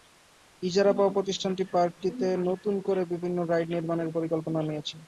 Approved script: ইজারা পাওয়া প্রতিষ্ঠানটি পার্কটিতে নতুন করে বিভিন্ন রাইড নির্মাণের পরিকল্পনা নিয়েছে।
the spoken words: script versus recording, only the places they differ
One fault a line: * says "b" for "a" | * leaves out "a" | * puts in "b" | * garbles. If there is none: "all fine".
all fine